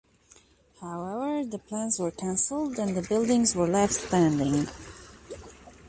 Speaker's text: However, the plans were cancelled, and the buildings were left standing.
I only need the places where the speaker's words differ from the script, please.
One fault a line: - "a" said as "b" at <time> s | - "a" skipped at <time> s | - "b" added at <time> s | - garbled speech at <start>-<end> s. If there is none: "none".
none